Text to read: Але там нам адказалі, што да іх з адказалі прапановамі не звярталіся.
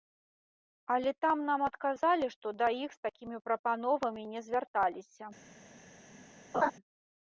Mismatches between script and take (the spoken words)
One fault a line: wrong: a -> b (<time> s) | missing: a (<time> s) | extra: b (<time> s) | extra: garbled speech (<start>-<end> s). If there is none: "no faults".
wrong: адказалі -> такімі (3.1 s)